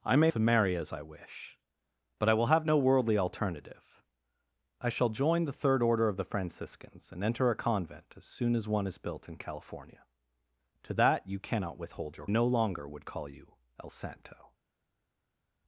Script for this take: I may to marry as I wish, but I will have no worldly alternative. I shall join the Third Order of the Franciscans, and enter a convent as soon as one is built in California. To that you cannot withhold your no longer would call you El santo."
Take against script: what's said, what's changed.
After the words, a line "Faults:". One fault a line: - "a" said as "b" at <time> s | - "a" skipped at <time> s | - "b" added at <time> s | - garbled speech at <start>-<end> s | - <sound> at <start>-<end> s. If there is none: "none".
I may to marry as I wish, but I will have no worldly alternative. I shall join the Third Order of the Franciscans, and enter a convent as soon as one is built in California. To that you cannot withhold your no longer would call you El santo."
Faults:
none